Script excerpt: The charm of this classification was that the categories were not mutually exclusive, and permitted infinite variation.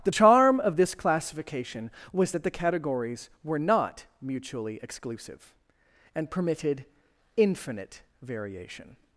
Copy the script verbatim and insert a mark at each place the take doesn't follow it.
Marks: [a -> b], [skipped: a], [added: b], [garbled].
The charm of this classification was that the categories were not mutually exclusive, and permitted infinite variation.